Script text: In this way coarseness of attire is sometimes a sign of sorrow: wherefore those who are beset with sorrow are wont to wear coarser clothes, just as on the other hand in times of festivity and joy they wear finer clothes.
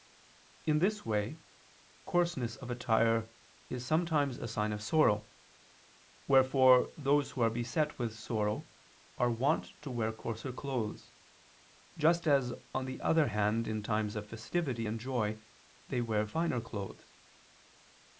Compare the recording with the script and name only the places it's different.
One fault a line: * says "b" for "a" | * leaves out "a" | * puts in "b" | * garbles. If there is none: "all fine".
all fine